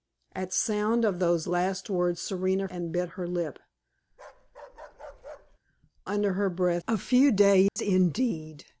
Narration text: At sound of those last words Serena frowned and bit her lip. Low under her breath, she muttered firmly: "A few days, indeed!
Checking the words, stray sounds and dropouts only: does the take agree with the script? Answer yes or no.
no